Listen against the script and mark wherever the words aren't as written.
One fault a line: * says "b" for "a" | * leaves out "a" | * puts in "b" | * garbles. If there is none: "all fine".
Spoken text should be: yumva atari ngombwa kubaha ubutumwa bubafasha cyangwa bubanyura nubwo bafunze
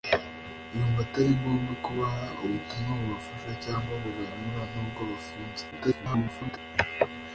* garbles